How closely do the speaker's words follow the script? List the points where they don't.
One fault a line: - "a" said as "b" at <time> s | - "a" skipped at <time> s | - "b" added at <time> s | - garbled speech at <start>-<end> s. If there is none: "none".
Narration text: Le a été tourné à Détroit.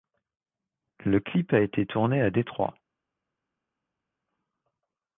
- "clip" added at 1.2 s